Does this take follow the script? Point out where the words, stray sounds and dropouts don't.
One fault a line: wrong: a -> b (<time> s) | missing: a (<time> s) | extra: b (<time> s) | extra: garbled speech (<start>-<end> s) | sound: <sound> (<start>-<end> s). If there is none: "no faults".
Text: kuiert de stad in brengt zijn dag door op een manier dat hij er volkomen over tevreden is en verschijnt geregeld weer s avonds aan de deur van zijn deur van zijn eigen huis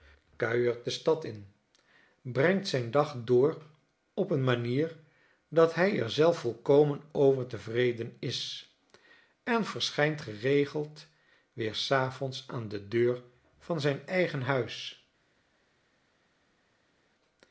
extra: zelf (6.1 s)
missing: deur van zijn (14.1 s)